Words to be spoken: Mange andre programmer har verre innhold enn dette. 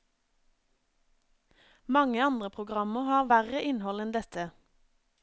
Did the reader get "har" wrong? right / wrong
right